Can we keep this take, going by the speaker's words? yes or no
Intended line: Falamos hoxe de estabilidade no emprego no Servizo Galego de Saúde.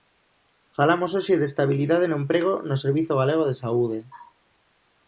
yes